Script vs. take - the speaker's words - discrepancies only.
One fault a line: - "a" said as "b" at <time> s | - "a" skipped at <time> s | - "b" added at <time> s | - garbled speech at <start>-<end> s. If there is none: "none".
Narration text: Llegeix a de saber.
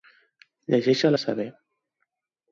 none